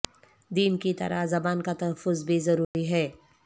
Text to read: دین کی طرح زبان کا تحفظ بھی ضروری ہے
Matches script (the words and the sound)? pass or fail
fail